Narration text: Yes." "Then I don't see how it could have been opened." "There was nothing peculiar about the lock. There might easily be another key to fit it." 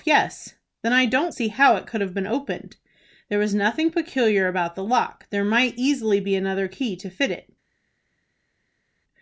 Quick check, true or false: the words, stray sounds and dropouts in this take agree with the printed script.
true